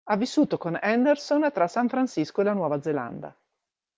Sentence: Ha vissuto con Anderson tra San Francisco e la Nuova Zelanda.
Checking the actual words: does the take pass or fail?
pass